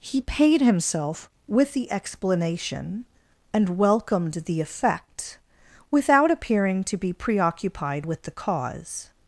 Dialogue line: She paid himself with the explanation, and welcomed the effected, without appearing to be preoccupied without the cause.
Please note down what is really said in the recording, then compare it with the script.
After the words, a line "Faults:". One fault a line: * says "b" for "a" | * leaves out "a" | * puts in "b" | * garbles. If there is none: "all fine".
He paid himself with the explanation, and welcomed the effect, without appearing to be preoccupied with the cause.
Faults:
* says "He" for "She"
* says "effect" for "effected"
* says "with" for "without"